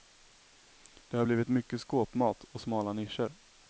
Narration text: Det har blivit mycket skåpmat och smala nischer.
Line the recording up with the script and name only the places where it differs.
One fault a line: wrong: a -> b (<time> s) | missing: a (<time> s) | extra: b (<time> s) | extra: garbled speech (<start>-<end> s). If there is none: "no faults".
no faults